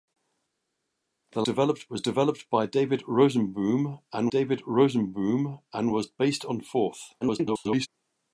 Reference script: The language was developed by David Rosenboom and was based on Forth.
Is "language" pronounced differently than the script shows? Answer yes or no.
yes